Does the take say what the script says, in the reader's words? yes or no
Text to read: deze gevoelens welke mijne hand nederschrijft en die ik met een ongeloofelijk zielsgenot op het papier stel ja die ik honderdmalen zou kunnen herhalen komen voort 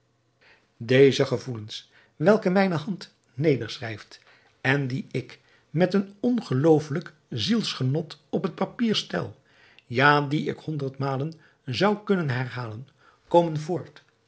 yes